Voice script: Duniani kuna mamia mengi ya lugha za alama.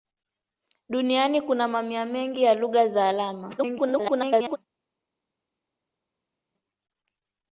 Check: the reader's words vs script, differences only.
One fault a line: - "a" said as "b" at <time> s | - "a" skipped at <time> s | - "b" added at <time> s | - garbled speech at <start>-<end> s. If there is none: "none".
- garbled speech at 3.6-4.6 s